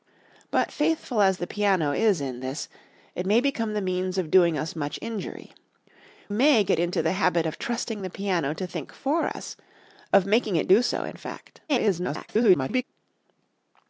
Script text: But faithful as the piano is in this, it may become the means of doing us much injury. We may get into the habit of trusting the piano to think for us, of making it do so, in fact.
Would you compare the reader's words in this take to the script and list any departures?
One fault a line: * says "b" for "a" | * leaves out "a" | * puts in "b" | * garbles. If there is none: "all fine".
* leaves out "We"
* garbles